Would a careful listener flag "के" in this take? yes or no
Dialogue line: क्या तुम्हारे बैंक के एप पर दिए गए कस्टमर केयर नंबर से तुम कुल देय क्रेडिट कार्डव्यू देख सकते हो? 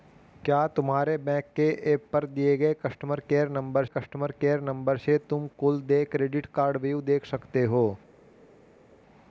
no